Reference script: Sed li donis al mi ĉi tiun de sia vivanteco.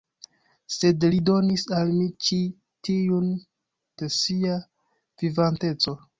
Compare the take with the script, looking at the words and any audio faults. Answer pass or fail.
pass